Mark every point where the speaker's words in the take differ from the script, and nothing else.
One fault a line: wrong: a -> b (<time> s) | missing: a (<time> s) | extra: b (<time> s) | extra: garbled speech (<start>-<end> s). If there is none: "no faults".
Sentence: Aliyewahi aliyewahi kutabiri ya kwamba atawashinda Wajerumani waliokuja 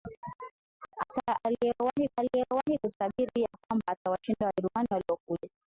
no faults